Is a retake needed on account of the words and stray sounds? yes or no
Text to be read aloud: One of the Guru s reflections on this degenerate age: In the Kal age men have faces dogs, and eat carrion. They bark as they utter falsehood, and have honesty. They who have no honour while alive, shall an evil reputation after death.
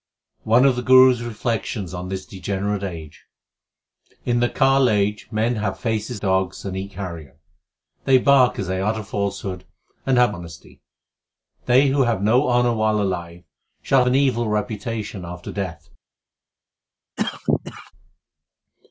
yes